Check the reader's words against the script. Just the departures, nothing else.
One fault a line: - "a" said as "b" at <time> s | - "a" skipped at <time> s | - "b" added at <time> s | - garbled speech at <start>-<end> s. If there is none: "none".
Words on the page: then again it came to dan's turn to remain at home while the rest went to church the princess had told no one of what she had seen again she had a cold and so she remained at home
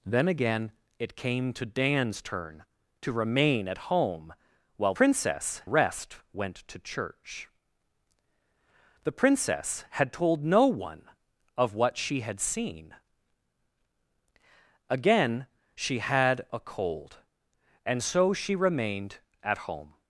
- "the" said as "princess" at 4.9 s